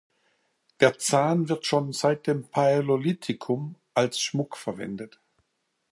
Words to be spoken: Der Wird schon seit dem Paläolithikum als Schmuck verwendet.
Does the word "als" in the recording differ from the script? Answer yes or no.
no